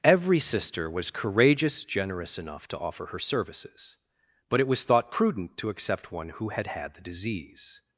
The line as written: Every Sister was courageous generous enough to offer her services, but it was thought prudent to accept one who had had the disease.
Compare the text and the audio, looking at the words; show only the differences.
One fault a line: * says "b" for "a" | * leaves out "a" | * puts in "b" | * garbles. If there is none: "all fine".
all fine